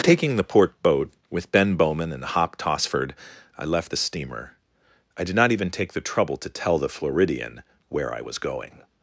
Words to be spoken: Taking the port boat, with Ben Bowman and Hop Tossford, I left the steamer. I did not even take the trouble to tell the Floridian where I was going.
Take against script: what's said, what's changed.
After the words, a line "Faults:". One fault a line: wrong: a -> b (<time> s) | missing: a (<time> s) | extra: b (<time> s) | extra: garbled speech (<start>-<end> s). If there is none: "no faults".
Taking the port boat, with Ben Bowman and Hop Tossford, I left the steamer. I did not even take the trouble to tell the Floridian where I was going.
Faults:
no faults